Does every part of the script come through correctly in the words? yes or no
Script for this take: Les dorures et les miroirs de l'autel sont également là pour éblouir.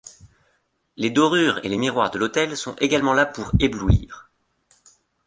yes